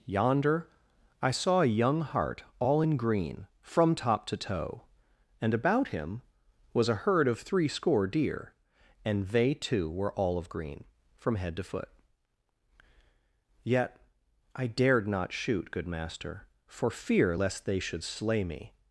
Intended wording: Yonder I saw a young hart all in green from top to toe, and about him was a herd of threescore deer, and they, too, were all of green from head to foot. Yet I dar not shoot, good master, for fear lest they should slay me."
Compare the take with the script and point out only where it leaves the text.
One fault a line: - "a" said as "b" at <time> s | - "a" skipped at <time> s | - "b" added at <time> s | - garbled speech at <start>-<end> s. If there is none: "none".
- "dar" said as "dared" at 14.7 s